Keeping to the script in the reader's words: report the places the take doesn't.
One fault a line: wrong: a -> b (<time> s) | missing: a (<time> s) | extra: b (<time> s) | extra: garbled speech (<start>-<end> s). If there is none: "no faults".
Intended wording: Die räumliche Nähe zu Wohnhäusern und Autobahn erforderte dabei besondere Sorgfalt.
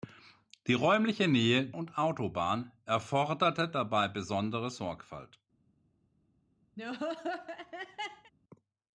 missing: zu Wohnhäusern (1.7 s)